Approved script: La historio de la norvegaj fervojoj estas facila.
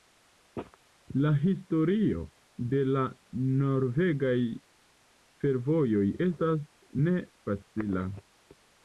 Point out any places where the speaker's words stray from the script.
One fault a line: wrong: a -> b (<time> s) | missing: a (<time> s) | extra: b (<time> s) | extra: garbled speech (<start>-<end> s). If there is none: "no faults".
extra: ne (7.1 s)